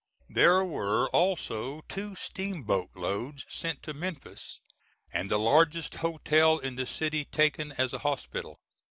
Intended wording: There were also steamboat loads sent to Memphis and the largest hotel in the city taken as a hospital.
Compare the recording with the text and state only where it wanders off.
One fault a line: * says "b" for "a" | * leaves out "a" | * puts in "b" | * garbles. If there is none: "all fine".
* puts in "two"